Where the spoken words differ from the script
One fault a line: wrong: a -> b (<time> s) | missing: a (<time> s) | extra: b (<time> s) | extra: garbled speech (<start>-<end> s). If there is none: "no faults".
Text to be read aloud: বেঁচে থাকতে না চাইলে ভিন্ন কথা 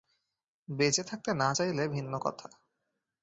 no faults